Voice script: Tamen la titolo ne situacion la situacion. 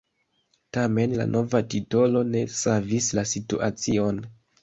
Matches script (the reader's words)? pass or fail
fail